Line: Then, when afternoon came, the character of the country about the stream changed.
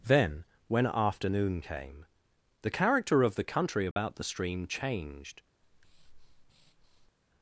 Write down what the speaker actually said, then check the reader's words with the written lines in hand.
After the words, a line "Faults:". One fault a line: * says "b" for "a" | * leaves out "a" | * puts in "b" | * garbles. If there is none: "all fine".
Then, when afternoon came, the character of the country about the stream changed.
Faults:
all fine